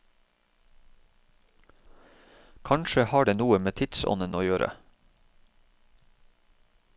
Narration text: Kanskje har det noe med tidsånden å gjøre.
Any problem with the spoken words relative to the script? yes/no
no